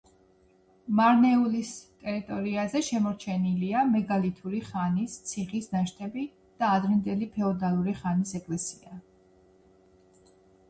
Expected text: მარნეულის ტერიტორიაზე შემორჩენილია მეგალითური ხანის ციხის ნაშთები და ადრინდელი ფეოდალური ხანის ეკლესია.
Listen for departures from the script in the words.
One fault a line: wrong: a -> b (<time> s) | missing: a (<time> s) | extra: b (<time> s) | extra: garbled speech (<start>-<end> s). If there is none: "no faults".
no faults